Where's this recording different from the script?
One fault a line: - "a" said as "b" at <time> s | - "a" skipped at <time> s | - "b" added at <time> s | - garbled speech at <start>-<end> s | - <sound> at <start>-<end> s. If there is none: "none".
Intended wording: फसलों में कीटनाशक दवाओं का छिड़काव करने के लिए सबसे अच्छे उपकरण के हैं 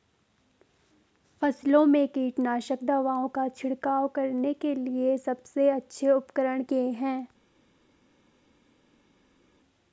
none